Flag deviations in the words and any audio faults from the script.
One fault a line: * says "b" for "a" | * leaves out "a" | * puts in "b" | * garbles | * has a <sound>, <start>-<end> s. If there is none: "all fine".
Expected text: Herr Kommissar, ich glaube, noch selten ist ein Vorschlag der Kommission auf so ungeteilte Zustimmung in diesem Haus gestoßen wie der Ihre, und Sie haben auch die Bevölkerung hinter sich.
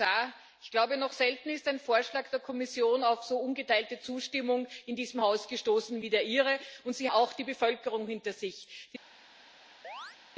* leaves out "haben"
* has a chirp, 9.8-10.2 s